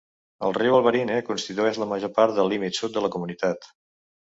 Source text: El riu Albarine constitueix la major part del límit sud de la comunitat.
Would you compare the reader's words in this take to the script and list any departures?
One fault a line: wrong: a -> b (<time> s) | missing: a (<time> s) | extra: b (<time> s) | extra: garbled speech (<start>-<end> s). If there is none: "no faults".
no faults